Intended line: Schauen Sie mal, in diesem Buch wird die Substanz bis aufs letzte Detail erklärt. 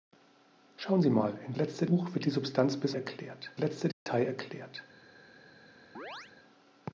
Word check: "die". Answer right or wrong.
right